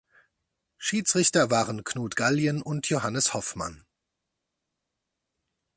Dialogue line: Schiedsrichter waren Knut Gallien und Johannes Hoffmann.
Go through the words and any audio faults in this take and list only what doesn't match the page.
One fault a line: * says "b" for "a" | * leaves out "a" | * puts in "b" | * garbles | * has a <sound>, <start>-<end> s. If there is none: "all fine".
all fine